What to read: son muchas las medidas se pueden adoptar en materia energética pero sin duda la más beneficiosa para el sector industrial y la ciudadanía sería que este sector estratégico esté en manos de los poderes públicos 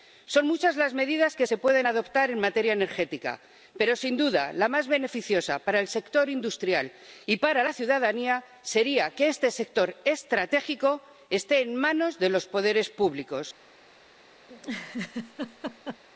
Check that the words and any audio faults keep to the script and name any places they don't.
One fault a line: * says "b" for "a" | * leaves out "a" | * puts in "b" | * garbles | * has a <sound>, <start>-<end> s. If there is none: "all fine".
* puts in "que"
* puts in "para"
* has a laugh, 14.5-16.0 s